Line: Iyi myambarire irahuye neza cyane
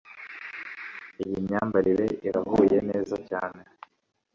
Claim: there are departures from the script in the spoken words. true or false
false